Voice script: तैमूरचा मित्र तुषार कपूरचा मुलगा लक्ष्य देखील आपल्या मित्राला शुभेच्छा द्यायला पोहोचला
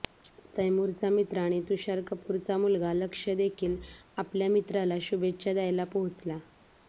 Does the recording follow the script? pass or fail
fail